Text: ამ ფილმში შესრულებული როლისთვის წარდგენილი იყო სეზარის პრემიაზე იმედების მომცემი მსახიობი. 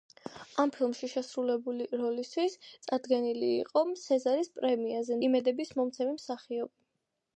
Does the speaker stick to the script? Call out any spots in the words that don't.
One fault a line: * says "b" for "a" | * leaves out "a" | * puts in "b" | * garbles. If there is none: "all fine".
all fine